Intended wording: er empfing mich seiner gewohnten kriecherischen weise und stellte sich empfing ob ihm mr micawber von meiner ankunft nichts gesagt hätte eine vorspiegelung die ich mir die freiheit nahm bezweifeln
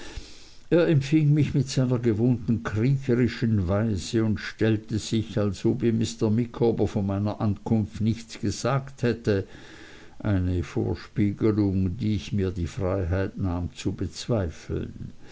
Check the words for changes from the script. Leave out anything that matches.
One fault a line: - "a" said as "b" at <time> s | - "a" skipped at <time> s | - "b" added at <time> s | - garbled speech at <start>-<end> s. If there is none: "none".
- "mit" added at 1.5 s
- "empfing" said as "als" at 5.4 s
- "zu" added at 13.7 s